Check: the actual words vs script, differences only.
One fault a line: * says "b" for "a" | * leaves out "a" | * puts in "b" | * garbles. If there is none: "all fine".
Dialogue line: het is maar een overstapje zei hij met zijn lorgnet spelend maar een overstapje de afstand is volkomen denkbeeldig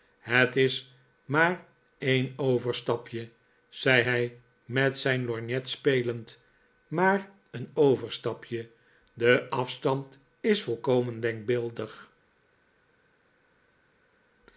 all fine